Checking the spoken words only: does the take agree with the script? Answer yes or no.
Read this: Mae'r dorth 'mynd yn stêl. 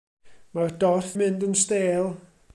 yes